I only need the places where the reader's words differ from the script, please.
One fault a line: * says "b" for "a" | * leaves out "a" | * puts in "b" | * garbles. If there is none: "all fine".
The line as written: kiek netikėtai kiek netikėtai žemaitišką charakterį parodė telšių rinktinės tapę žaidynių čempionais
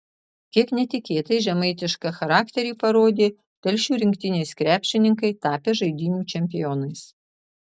* leaves out "kiek netikėtai"
* puts in "krepšininkai"